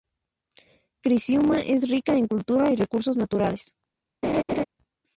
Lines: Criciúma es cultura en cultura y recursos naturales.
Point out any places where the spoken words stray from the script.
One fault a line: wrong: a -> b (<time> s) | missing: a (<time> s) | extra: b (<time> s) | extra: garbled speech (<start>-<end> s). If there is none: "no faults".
wrong: cultura -> rica (1.9 s)